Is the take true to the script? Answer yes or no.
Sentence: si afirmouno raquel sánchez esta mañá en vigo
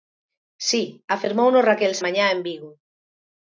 no